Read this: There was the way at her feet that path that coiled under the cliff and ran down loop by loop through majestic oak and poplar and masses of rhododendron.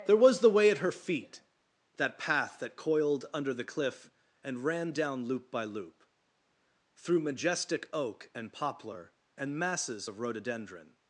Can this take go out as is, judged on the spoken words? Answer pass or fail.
pass